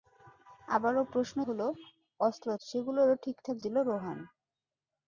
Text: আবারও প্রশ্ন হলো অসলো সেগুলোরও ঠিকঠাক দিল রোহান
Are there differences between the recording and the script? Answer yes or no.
no